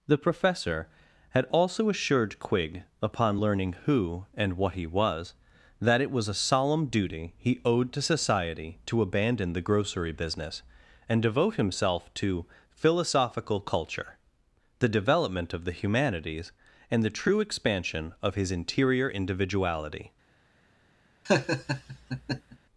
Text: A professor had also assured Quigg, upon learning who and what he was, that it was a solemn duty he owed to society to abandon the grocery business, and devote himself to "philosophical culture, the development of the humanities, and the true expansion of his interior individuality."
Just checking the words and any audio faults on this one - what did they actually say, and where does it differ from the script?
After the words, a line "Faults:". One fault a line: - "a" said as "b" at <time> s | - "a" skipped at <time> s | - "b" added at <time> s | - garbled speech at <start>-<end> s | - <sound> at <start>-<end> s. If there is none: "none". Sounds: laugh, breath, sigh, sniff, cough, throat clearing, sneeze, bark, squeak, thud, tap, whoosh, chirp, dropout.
The professor had also assured Quigg, upon learning who and what he was, that it was a solemn duty he owed to society to abandon the grocery business, and devote himself to "philosophical culture, the development of the humanities, and the true expansion of his interior individuality."
Faults:
- "A" said as "The" at 0.1 s
- laugh at 21.3-22.6 s